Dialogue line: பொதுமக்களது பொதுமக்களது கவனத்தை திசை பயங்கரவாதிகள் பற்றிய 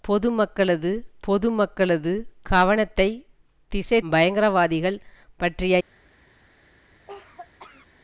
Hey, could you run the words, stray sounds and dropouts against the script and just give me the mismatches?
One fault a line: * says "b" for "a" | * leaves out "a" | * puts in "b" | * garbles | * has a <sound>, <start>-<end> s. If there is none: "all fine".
* has a cough, 7.1-7.9 s